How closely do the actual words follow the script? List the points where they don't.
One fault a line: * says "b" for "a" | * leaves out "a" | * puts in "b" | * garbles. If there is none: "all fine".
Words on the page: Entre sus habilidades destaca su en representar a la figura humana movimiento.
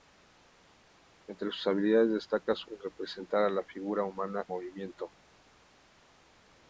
all fine